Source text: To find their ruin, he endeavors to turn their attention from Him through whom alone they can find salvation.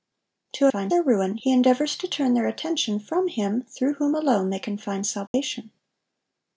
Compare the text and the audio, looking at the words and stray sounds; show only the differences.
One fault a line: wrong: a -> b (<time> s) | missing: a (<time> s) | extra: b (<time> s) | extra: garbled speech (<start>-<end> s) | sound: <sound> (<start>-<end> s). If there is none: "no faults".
sound: dropout (5.3-5.3 s)